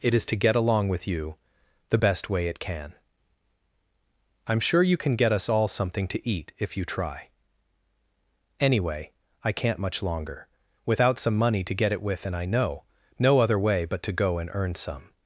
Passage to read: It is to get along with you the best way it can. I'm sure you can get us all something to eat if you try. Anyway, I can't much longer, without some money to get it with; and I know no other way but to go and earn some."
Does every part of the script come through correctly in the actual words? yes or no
yes